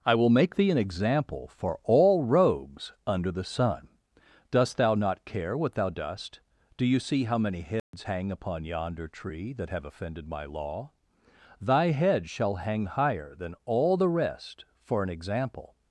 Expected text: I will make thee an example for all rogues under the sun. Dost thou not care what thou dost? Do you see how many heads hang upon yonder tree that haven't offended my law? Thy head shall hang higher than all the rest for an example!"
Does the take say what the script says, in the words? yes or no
no